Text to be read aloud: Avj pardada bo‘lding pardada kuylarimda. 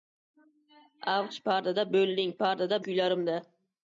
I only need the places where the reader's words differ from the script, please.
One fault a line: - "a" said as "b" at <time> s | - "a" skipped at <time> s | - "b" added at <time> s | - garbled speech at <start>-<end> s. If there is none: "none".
none